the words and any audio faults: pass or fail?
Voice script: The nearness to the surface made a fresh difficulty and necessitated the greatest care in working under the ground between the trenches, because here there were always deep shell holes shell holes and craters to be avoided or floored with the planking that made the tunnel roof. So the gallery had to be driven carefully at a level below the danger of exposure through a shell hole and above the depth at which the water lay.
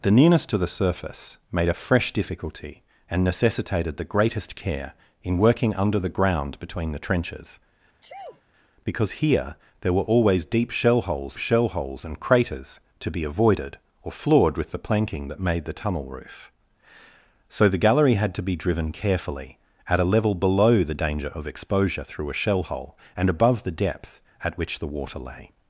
fail